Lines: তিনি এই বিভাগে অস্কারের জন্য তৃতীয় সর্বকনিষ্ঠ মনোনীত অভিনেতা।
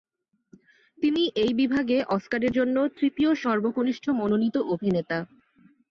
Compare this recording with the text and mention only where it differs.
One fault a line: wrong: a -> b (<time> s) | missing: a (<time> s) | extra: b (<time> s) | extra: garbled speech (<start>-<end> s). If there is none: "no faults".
no faults